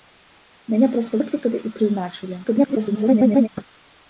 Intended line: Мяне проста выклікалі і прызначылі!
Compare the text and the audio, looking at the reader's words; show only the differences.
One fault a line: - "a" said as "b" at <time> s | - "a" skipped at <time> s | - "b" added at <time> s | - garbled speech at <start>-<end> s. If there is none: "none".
- garbled speech at 2.4-3.5 s